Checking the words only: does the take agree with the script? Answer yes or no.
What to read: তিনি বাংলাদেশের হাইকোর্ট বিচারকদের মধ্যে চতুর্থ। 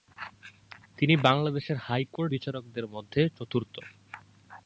yes